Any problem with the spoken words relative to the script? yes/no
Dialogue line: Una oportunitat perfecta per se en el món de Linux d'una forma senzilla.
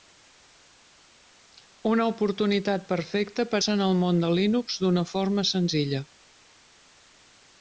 no